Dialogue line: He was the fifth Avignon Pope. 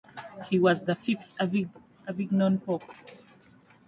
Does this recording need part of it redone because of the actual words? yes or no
no